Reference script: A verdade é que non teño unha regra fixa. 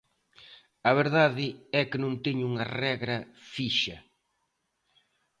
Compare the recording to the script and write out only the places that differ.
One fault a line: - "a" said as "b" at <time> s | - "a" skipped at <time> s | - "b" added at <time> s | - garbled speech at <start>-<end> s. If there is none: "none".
none